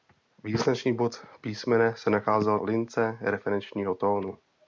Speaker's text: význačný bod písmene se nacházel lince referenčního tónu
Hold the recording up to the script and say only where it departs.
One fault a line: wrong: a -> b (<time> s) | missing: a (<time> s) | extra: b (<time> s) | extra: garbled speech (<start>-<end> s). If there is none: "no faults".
no faults